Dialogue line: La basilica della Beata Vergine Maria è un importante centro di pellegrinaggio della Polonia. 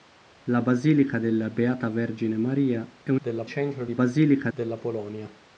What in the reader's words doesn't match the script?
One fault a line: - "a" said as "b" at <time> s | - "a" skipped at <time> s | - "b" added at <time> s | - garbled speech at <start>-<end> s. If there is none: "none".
- "importante" said as "della" at 3.2 s
- "pellegrinaggio" said as "basilica" at 3.9 s